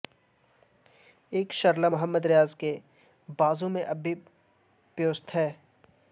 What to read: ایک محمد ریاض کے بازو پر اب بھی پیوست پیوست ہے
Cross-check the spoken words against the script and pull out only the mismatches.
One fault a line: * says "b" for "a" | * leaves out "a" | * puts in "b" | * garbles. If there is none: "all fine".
* puts in "شرلہ"
* says "میں" for "پر"
* leaves out "پیوست"